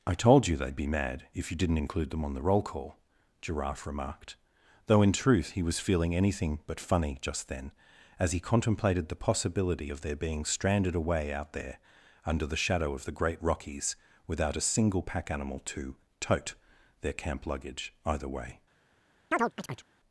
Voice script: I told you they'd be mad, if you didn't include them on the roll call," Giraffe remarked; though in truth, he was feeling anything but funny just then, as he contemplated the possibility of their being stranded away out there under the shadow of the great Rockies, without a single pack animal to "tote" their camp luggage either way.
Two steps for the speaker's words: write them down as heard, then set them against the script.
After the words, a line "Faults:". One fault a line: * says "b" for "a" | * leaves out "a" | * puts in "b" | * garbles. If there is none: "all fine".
I told you they'd be mad, if you didn't include them on the roll call," Giraffe remarked; though in truth, he was feeling anything but funny just then, as he contemplated the possibility of their being stranded away out there under the shadow of the great Rockies, without a single pack animal to "tote" their camp luggage either way.
Faults:
all fine